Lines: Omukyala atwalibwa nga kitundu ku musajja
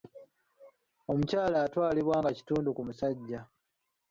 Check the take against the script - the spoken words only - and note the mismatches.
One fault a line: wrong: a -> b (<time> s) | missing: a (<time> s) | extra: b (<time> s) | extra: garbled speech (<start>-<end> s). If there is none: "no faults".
no faults